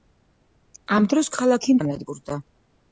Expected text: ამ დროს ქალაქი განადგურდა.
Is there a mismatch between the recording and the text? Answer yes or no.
no